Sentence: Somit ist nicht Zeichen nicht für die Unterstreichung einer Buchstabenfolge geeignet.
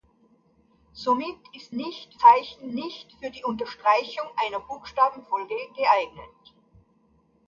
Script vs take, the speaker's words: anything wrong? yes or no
no